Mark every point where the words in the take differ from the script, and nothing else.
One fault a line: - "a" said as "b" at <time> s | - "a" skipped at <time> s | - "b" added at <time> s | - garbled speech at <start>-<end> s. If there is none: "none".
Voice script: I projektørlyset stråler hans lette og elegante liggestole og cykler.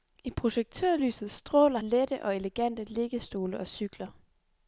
- "hans" skipped at 1.8 s